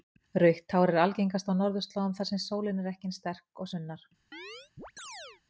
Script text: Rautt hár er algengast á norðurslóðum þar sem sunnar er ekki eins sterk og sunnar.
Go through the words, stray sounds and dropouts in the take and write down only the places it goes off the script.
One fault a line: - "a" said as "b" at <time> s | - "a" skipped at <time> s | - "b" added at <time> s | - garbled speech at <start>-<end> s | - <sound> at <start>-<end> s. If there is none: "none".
- "sunnar" said as "sólin" at 2.5 s
- chirp at 4.3-5.4 s